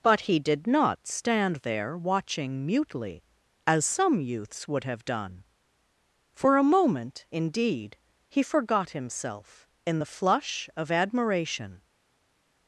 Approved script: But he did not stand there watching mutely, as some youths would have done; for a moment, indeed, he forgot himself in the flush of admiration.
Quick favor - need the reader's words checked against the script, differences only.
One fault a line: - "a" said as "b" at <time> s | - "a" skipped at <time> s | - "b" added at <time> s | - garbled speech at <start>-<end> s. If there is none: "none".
none